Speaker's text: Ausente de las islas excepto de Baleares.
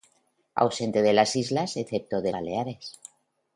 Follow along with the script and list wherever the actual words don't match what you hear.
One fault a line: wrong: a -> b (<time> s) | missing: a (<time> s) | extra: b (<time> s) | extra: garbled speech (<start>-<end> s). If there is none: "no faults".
no faults